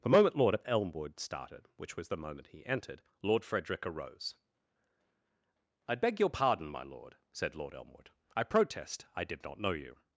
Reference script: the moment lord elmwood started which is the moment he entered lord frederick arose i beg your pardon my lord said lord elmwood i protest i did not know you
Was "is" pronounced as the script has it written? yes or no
no